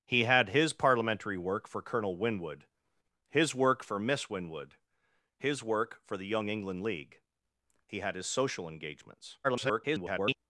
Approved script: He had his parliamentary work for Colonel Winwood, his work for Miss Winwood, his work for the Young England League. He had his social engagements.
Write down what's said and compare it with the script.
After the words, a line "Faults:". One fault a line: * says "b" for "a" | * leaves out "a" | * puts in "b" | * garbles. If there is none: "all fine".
He had his parliamentary work for Colonel Winwood, his work for Miss Winwood, his work for the Young England League. He had his social engagements. [garbled]
Faults:
* garbles